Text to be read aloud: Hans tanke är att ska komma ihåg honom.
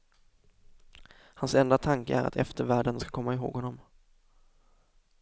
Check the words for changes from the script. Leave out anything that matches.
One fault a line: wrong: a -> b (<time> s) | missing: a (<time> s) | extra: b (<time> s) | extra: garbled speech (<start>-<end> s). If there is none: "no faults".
extra: enda (1.6 s)
extra: eftervärlden (2.4 s)